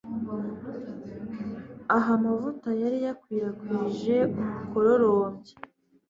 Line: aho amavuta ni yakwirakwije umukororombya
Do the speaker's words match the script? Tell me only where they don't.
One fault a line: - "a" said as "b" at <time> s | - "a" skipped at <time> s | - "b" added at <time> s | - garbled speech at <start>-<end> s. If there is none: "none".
- "ni" said as "yari" at 2.8 s